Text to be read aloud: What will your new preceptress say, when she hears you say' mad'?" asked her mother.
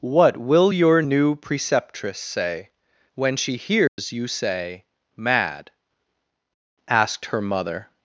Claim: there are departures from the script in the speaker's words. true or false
false